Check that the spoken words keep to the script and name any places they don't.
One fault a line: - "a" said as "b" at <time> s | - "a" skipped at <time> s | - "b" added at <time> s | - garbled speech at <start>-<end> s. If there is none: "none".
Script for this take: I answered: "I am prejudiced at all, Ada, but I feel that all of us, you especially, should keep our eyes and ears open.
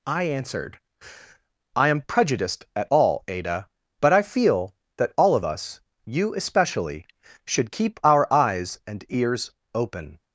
none